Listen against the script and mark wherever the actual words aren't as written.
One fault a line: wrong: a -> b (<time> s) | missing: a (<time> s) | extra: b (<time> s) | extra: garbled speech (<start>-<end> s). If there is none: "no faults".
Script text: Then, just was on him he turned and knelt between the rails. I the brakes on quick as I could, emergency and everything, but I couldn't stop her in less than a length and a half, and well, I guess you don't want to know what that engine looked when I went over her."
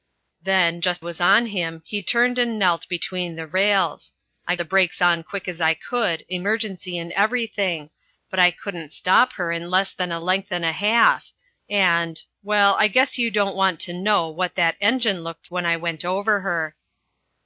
no faults